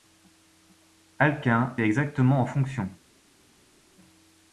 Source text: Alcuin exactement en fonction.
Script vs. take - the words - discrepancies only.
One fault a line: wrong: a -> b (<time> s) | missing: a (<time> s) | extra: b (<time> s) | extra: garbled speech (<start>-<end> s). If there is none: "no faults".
no faults